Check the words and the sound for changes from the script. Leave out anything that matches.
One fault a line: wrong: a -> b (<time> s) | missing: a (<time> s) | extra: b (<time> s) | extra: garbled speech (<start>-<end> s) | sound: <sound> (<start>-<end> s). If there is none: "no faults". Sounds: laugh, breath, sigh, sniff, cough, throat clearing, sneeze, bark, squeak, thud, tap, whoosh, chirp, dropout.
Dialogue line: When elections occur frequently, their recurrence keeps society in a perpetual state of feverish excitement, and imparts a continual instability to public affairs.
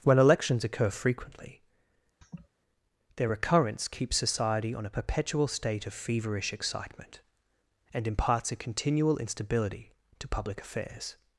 sound: laugh (2.2-2.5 s)
wrong: in -> on (4.7 s)